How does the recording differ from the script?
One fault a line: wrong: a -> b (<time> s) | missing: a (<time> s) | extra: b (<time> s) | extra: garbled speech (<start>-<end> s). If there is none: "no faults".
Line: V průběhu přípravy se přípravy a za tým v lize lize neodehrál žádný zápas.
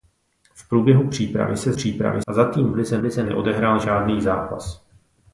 no faults